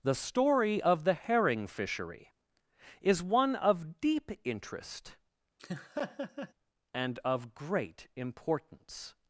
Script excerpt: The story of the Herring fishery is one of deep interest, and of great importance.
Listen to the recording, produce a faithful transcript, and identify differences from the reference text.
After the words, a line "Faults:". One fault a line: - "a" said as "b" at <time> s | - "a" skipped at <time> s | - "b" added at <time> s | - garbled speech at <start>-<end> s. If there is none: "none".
The story of the Herring fishery is one of deep interest, and of great importance.
Faults:
none